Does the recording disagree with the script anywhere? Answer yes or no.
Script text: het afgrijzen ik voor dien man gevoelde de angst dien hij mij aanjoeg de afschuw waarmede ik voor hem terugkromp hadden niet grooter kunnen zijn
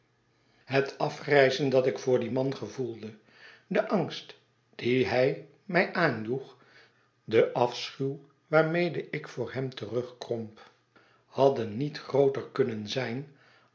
yes